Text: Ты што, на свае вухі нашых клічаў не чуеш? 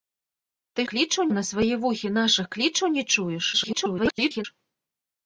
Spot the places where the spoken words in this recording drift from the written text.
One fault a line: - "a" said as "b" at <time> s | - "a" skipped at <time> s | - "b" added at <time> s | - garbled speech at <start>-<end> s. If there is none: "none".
- "што" said as "клічаў" at 0.9 s
- garbled speech at 3.5-4.5 s